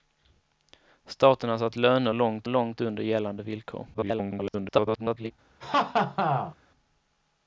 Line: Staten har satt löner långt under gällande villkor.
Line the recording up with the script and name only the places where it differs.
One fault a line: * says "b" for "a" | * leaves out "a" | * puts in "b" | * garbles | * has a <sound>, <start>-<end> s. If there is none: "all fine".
* puts in "långt"
* garbles
* has a laugh, 5.6-6.6 s